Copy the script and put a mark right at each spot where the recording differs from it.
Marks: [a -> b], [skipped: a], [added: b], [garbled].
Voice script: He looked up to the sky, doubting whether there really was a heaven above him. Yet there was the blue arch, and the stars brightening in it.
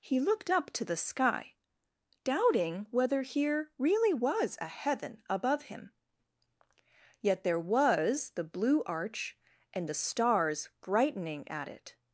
He looked up to the sky, doubting whether [there -> here] really was a heaven above him. Yet there was the blue arch, and the stars brightening [in -> at] it.